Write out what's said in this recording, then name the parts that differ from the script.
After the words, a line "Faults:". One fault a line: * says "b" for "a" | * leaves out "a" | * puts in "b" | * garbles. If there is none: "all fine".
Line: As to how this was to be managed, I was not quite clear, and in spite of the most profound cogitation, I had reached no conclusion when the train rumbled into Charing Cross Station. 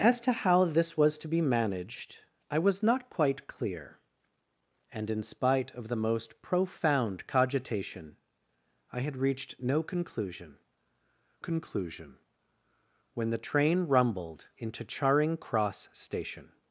As to how this was to be managed, I was not quite clear, and in spite of the most profound cogitation, I had reached no conclusion conclusion when the train rumbled into Charing Cross Station.
Faults:
* puts in "conclusion"